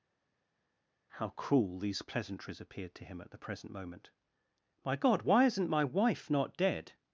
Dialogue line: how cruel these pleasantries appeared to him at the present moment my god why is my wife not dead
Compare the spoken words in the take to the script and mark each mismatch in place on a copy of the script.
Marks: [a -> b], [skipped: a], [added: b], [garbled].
how cruel these pleasantries appeared to him at the present moment my god why [is -> isn't] my wife not dead